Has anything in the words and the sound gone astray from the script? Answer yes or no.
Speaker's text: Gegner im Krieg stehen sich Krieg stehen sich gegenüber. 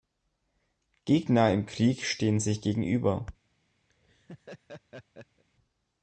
yes